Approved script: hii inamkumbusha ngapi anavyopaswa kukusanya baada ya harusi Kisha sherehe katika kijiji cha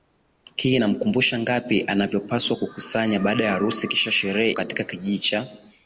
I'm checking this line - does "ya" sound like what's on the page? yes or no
yes